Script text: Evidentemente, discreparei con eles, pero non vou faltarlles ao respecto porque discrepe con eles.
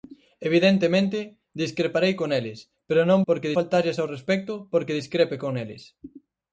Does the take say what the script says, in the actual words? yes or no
no